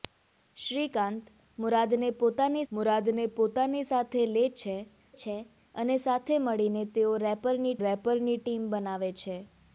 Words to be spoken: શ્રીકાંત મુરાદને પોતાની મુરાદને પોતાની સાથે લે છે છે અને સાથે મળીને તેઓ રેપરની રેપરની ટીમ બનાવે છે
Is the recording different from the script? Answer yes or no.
no